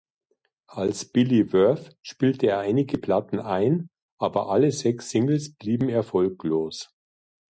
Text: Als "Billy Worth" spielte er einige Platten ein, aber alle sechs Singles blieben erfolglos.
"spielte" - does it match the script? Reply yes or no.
yes